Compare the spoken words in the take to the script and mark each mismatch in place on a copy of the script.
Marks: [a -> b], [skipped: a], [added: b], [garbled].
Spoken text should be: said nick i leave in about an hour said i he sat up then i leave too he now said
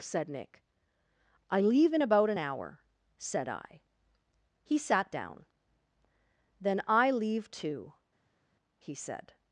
said nick i leave in about an hour said i he sat [up -> down] then i leave too he [skipped: now] said